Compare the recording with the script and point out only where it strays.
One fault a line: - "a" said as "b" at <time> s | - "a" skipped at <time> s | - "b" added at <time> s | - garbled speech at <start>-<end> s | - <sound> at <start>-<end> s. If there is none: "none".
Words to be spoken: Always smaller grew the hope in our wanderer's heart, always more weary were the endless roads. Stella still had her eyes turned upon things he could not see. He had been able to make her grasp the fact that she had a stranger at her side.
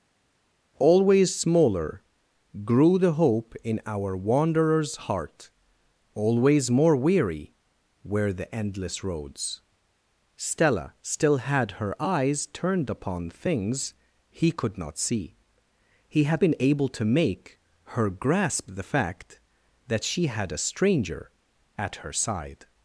none